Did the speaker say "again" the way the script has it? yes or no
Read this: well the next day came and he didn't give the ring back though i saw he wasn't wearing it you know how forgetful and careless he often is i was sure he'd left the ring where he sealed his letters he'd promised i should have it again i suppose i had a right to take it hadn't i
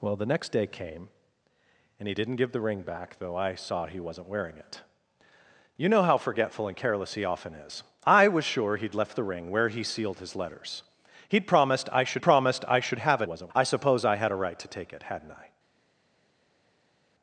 no